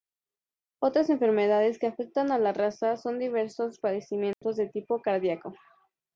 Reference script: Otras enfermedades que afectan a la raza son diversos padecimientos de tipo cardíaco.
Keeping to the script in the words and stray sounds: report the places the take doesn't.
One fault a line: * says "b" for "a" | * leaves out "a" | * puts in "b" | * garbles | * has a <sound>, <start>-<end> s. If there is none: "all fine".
* has a dropout, 4.3-4.4 s